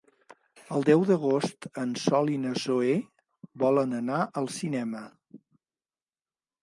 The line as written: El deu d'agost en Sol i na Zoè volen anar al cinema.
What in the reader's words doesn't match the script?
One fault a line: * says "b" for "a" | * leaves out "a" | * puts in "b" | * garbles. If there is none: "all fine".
all fine